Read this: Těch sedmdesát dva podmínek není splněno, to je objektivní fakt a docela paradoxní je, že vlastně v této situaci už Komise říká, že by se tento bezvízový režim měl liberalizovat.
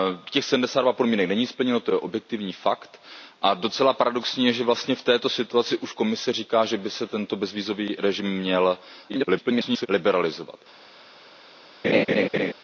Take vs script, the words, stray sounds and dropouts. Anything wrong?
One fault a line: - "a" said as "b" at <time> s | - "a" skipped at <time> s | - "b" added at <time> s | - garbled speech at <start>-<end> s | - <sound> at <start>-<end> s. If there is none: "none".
- garbled speech at 9.1-9.9 s
- laugh at 11.8-12.5 s